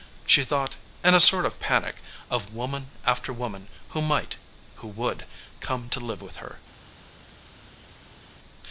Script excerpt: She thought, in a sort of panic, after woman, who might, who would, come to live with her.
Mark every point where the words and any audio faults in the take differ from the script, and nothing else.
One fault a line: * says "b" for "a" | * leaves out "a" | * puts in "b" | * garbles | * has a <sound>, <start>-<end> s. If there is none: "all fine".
* puts in "of woman"